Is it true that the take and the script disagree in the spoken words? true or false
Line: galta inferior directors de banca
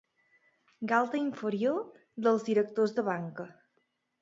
true